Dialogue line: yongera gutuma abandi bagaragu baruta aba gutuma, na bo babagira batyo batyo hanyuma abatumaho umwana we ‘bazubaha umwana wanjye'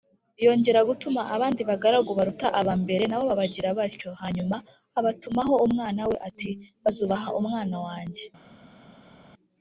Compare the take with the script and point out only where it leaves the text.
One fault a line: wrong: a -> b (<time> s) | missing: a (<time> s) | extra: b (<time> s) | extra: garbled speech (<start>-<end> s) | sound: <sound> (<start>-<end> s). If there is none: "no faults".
wrong: gutuma -> mbere (2.8 s)
missing: batyo (4.1 s)
extra: ati (6.3 s)